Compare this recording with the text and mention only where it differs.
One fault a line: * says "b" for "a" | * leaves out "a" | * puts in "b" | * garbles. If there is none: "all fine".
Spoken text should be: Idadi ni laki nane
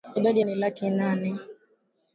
all fine